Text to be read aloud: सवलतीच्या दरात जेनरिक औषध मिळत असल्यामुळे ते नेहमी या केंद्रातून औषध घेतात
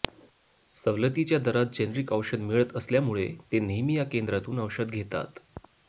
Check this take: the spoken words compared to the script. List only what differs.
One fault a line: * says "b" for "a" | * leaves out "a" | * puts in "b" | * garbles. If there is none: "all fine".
all fine